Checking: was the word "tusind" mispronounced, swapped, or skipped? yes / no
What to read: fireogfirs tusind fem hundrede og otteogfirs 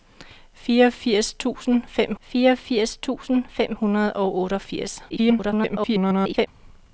no